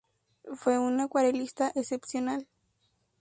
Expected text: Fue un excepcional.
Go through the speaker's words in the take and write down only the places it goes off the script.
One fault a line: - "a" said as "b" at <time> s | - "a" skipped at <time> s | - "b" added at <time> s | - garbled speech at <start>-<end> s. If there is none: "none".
- "acuarelista" added at 1.0 s